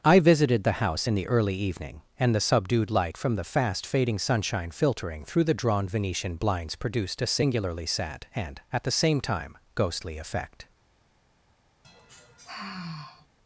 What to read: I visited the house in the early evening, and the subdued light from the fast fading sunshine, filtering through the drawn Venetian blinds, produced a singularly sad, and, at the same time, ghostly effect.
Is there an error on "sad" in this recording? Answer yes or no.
no